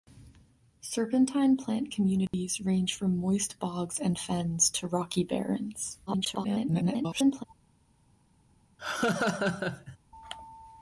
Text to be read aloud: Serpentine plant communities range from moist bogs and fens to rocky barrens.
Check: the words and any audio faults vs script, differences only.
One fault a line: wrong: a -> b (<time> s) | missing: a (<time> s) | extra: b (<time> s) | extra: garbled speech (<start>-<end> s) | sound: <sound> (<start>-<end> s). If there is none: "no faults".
sound: dropout (2.3-2.3 s)
extra: garbled speech (6.1-7.4 s)
sound: laugh (8.8-10.0 s)